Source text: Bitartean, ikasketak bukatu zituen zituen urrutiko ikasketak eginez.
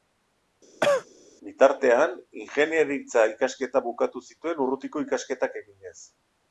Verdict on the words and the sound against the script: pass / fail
fail